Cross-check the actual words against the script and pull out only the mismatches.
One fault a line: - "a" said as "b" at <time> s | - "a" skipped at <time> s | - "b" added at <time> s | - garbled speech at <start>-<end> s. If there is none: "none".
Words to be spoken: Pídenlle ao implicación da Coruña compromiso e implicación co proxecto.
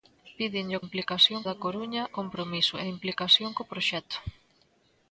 none